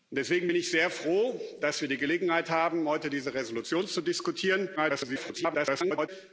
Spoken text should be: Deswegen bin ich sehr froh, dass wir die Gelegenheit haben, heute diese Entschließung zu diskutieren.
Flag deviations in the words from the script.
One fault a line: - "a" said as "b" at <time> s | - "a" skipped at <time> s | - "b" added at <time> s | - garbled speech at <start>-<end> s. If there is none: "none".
- garbled speech at 4.8-6.1 s